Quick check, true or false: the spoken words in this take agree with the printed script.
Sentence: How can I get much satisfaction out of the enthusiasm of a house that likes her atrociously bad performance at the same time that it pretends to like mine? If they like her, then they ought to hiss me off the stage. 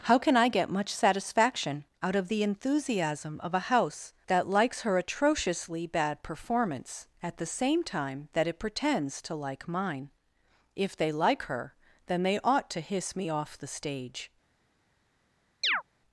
true